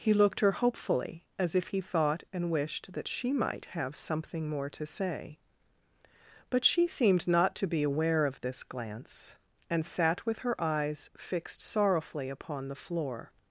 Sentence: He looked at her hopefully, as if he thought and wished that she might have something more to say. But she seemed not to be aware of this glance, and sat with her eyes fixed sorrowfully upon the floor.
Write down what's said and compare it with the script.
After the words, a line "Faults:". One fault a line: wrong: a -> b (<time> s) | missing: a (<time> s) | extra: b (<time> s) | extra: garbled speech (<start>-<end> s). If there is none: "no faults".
He looked her hopefully, as if he thought and wished that she might have something more to say. But she seemed not to be aware of this glance, and sat with her eyes fixed sorrowfully upon the floor.
Faults:
missing: at (0.4 s)